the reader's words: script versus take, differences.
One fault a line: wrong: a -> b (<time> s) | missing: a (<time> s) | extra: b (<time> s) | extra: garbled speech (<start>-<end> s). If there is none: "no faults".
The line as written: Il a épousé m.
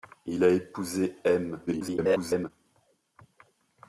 extra: garbled speech (1.7-2.5 s)